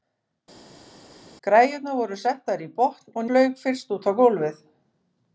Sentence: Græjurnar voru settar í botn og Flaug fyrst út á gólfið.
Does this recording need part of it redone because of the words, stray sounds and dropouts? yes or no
no